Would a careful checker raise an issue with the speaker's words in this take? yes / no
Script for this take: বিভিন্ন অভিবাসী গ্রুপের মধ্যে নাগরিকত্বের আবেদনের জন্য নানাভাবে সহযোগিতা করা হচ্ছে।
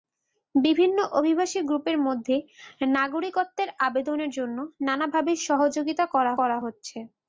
yes